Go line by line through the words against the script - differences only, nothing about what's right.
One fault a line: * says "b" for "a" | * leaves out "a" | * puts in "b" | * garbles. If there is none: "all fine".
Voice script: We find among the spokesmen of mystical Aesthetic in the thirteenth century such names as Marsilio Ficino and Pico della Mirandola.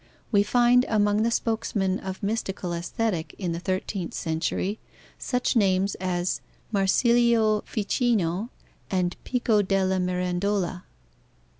all fine